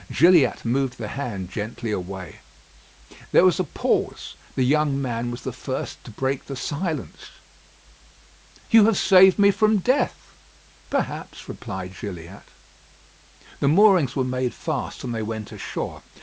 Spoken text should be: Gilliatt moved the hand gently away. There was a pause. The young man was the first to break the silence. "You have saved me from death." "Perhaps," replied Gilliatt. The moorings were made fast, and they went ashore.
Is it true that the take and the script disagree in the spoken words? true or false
false